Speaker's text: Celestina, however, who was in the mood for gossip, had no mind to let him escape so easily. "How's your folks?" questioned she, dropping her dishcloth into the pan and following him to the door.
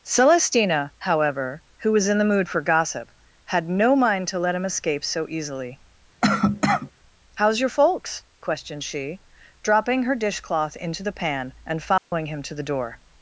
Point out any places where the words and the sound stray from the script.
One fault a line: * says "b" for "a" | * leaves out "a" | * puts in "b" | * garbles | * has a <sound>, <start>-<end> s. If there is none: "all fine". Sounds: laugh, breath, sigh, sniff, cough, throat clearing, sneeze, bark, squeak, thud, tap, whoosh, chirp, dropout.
* has a cough, 6.2-6.9 s
* has a dropout, 12.0-12.1 s